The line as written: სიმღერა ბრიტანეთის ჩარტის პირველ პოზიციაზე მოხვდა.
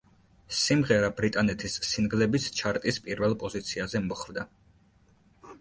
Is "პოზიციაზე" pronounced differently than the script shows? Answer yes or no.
no